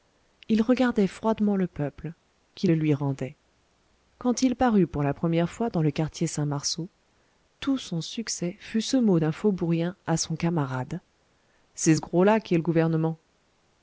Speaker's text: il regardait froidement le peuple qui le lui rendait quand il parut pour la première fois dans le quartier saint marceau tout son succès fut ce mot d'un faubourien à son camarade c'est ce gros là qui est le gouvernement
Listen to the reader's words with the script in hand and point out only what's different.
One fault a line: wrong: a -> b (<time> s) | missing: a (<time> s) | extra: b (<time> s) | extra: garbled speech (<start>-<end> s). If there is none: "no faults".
no faults